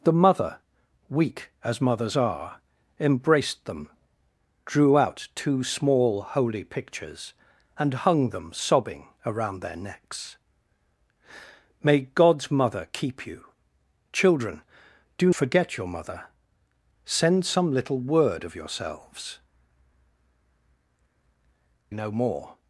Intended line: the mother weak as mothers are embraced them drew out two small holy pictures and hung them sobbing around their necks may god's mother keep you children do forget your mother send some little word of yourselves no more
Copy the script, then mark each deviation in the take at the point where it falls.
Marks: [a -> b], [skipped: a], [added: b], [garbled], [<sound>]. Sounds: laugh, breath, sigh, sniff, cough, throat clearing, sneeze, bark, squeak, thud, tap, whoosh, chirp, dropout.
the mother weak as mothers are embraced them drew out two small holy pictures and hung them sobbing around their necks may god's mother keep you children do forget your mother send some little word of yourselves no more